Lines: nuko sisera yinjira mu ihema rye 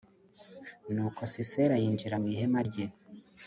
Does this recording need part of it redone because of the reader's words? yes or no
no